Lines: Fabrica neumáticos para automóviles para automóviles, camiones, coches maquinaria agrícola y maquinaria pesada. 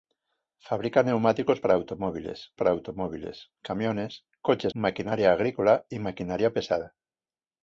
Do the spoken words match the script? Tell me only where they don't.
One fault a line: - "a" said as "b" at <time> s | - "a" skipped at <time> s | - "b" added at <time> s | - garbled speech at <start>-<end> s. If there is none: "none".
none